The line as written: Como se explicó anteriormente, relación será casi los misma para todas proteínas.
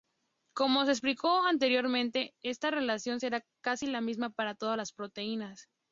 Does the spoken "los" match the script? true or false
false